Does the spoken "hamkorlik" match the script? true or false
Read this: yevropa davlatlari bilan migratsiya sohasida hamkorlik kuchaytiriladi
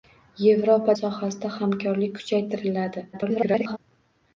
true